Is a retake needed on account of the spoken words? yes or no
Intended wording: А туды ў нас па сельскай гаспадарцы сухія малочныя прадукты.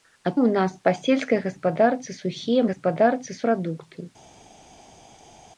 yes